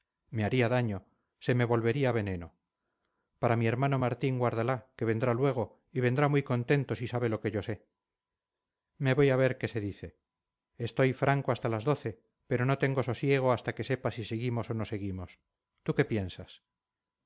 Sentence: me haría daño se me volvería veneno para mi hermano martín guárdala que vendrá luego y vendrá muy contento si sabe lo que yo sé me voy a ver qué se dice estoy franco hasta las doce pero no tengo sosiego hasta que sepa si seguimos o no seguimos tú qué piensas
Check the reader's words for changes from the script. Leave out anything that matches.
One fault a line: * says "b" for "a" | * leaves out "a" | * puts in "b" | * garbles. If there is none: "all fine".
all fine